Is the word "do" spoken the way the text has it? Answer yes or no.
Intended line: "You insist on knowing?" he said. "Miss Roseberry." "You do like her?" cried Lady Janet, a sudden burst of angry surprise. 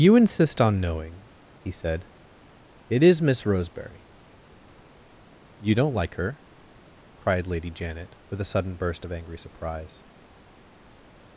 no